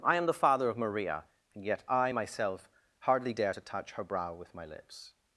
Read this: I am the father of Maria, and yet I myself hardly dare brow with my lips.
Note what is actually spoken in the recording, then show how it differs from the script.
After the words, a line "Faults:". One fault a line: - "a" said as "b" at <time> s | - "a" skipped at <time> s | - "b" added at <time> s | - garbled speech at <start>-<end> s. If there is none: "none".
I am the father of Maria, and yet I myself hardly dare to touch her brow with my lips.
Faults:
- "to touch her" added at 3.5 s